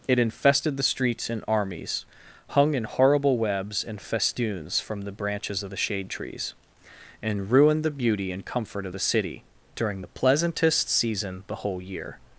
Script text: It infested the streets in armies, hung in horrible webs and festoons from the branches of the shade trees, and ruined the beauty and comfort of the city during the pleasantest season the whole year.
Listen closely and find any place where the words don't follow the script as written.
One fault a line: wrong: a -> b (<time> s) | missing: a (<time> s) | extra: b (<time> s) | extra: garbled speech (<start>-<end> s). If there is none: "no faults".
no faults